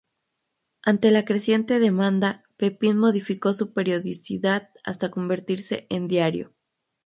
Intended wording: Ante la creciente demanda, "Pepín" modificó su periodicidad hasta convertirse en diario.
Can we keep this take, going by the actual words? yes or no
yes